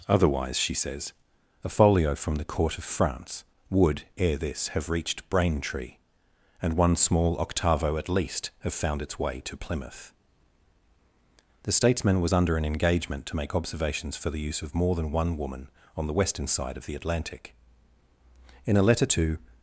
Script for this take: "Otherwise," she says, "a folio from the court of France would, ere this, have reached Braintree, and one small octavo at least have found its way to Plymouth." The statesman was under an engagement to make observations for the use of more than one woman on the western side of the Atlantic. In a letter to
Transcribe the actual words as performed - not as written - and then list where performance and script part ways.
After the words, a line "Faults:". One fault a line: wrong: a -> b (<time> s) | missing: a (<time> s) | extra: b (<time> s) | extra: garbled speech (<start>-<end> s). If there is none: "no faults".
"Otherwise," she says, "a folio from the court of France would, ere this, have reached Braintree, and one small octavo at least have found its way to Plymouth." The statesman was under an engagement to make observations for the use of more than one woman on the western side of the Atlantic. In a letter to
Faults:
no faults